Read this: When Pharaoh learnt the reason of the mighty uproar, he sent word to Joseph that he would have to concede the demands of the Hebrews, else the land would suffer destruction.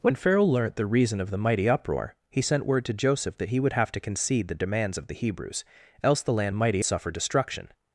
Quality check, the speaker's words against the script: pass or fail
fail